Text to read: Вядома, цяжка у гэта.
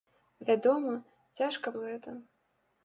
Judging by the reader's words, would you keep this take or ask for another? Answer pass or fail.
pass